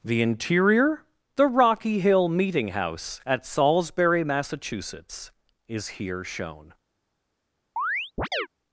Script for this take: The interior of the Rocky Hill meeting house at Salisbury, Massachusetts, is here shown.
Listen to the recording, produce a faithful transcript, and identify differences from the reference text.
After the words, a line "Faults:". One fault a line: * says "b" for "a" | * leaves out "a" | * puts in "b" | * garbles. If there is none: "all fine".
The interior the Rocky Hill meeting house at Salisbury, Massachusetts, is here shown.
Faults:
* leaves out "of"